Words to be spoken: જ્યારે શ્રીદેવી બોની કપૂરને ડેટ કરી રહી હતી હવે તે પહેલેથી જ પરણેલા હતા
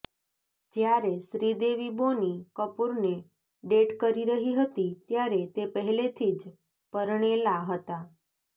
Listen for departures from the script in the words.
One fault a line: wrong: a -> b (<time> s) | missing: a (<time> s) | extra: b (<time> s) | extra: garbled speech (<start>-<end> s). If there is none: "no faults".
wrong: હવે -> ત્યારે (5.0 s)